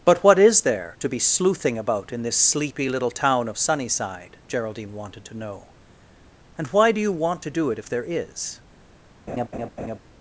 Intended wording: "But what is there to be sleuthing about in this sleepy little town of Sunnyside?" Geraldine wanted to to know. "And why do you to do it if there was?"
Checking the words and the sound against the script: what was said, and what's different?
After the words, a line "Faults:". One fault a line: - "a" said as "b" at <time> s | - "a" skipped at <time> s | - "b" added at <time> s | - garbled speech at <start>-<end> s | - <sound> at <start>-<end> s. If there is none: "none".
"But what is there to be sleuthing about in this sleepy little town of Sunnyside?" Geraldine wanted to know. "And why do you want to do it if there is?"
Faults:
- "to" skipped at 5.4 s
- "want" added at 7.1 s
- "was" said as "is" at 8.0 s
- laugh at 9.3-10.0 s